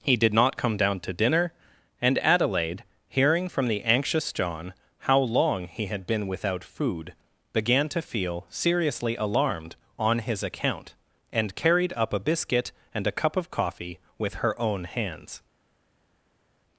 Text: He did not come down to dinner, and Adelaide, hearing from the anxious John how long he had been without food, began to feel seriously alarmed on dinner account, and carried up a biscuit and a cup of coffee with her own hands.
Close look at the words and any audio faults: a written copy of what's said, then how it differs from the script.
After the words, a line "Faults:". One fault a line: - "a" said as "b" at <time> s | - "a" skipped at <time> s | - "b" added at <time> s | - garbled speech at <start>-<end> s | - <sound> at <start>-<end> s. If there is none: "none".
He did not come down to dinner, and Adelaide, hearing from the anxious John how long he had been without food, began to feel seriously alarmed on his account, and carried up a biscuit and a cup of coffee with her own hands.
Faults:
- "dinner" said as "his" at 10.2 s